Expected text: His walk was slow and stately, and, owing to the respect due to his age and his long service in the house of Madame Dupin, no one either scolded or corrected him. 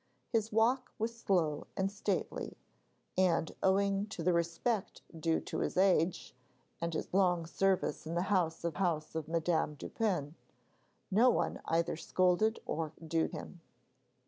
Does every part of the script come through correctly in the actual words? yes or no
no